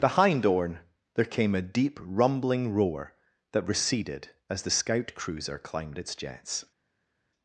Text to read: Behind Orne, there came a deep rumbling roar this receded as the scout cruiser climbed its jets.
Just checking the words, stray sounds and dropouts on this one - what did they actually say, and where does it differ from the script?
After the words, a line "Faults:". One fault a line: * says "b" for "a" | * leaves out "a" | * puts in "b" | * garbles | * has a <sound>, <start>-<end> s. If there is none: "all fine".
Behind Orne, there came a deep rumbling roar that receded as the scout cruiser climbed its jets.
Faults:
* says "that" for "this"